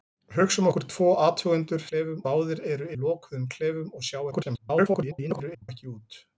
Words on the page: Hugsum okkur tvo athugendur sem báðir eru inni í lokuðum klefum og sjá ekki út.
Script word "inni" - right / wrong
wrong